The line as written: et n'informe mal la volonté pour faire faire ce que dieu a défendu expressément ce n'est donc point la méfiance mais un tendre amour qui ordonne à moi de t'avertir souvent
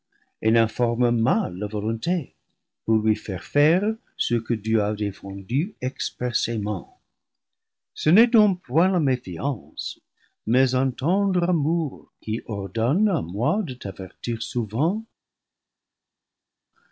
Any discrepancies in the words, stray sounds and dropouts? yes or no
yes